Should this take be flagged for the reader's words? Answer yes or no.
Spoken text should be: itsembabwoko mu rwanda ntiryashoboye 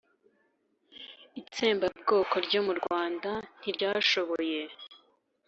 yes